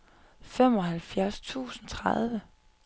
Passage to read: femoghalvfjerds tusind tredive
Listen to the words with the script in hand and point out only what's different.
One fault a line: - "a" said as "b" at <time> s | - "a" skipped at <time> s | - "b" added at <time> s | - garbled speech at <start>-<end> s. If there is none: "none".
none